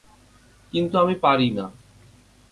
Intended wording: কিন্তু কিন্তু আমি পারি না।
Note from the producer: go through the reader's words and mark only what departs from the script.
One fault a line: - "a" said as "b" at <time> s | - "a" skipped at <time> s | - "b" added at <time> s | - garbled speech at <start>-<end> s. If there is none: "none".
- "কিন্তু" skipped at 0.9 s